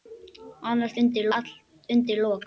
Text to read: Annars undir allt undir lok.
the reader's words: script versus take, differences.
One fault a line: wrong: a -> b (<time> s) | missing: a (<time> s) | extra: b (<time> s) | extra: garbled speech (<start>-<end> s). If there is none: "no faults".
no faults